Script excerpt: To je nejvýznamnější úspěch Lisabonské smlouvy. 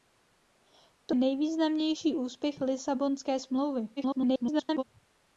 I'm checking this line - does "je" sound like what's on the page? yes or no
no